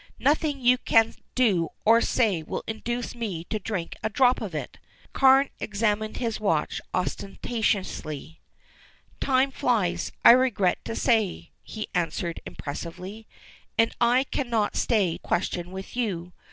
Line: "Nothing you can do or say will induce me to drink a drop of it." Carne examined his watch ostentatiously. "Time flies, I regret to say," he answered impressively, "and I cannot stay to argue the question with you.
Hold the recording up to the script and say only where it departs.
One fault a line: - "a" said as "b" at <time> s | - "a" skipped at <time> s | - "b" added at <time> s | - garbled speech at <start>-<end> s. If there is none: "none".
- "to argue the" skipped at 15.2 s